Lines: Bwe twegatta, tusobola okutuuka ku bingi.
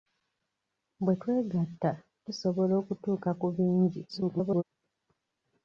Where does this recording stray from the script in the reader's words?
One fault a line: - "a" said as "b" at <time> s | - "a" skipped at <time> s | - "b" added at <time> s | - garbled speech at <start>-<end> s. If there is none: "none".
- garbled speech at 4.1-4.6 s